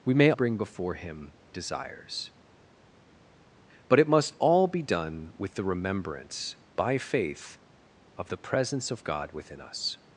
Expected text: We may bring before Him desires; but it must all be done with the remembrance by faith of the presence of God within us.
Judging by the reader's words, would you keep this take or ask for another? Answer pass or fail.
pass